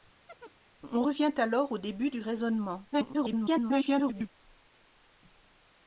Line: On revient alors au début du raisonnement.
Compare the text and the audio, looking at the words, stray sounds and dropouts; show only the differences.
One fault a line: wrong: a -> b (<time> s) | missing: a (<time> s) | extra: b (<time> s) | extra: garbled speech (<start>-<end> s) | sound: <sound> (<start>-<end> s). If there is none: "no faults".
sound: chirp (0.3-0.6 s)
extra: garbled speech (2.9-4.3 s)